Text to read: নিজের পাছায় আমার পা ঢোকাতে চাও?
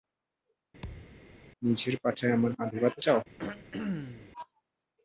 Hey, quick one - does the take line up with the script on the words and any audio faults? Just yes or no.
no